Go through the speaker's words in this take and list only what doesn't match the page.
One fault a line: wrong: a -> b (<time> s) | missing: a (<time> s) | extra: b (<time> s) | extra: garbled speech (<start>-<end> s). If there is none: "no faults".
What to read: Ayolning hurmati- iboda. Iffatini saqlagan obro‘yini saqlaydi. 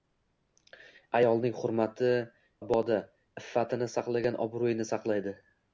no faults